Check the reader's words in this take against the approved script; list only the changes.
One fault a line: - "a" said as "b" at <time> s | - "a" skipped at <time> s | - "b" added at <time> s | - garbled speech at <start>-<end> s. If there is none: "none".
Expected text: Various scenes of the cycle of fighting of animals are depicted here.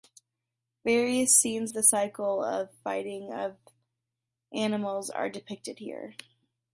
- "of" skipped at 1.7 s